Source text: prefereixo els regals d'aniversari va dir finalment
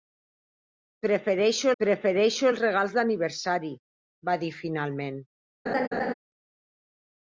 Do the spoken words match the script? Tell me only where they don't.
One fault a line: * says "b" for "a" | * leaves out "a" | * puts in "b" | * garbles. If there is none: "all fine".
* puts in "prefereixo"